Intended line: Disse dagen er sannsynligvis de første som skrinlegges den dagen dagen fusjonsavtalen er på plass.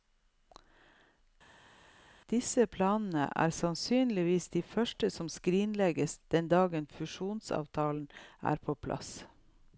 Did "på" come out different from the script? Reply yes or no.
no